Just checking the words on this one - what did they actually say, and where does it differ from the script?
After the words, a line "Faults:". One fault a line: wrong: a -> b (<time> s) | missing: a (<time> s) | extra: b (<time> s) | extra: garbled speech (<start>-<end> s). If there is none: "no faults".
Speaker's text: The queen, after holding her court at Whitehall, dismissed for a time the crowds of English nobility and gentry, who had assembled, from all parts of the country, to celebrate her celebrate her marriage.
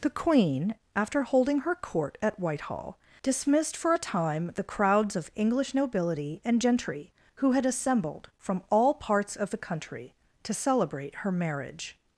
The queen, after holding her court at Whitehall, dismissed for a time the crowds of English nobility and gentry, who had assembled, from all parts of the country, to celebrate her marriage.
Faults:
missing: celebrate her (11.3 s)